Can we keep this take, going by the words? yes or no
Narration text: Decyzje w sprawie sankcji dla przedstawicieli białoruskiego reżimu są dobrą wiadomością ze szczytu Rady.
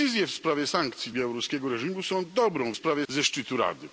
no